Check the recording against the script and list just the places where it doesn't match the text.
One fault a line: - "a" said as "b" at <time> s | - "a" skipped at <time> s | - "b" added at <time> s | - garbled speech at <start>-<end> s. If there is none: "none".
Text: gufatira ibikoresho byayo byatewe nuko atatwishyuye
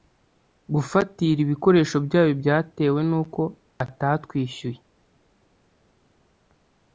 none